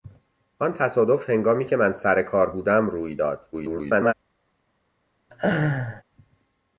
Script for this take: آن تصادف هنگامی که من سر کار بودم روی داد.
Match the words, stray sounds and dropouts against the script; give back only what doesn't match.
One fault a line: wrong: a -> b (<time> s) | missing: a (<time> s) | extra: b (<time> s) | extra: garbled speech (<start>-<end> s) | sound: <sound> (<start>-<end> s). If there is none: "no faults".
extra: garbled speech (3.5-4.1 s)
sound: laugh (5.3-6.0 s)